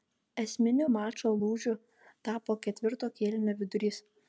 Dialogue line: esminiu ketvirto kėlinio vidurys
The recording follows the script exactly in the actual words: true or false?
false